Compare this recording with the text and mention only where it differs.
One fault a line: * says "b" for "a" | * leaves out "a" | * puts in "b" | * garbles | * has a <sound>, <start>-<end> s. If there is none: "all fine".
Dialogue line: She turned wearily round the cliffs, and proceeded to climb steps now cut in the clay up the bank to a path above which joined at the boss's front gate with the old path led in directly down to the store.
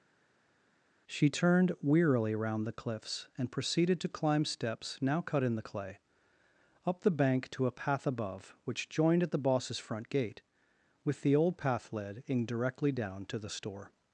all fine